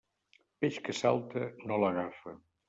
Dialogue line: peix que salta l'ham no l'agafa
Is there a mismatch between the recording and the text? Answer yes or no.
yes